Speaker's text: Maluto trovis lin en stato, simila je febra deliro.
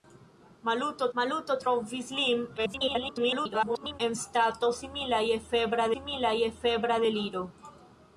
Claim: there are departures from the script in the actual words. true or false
true